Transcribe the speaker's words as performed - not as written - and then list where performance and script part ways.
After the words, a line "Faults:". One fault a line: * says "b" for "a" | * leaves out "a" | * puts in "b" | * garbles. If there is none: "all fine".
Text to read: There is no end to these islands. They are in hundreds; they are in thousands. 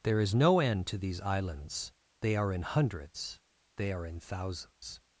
There is no end to these islands. They are in hundreds; they are in thousands.
Faults:
all fine